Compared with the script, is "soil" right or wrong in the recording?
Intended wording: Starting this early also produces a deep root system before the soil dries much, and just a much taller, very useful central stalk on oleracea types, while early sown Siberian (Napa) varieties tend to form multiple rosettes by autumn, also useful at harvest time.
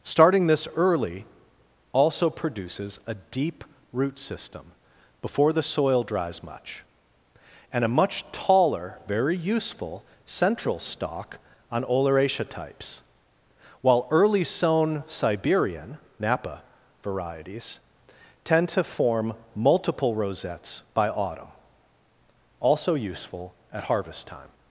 right